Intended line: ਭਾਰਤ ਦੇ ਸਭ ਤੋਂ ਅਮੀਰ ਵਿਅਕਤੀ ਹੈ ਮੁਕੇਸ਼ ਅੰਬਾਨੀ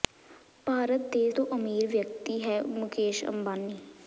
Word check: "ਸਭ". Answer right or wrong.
wrong